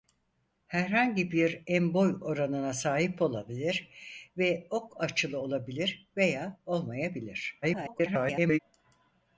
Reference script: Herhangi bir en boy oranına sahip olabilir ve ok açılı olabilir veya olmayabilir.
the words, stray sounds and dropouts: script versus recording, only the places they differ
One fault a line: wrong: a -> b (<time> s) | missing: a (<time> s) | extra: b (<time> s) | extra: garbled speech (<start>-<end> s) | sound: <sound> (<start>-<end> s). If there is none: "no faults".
extra: garbled speech (7.6-8.6 s)